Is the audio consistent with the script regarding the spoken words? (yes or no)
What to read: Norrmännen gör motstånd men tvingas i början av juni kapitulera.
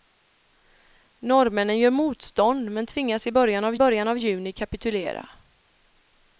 no